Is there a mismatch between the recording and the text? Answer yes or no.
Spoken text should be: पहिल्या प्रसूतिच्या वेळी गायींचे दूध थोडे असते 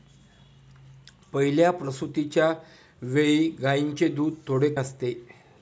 no